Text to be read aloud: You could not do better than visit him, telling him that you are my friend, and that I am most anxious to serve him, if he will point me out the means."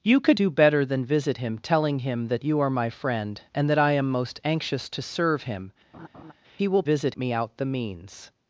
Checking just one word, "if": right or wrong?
wrong